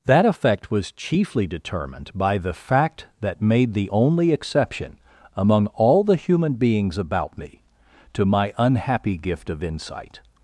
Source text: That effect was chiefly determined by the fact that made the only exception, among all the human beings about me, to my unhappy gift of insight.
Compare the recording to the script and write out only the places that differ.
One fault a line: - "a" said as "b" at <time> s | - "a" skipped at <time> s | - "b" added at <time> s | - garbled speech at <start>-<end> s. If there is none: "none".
none